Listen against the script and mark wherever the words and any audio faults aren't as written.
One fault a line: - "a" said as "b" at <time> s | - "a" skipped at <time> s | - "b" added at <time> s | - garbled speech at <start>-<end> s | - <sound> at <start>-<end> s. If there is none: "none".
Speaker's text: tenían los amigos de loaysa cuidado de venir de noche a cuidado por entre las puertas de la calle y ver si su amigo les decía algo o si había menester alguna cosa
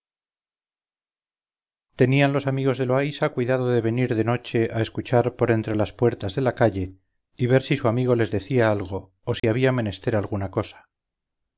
- "cuidado" said as "escuchar" at 4.8 s
- dropout at 9.4-9.4 s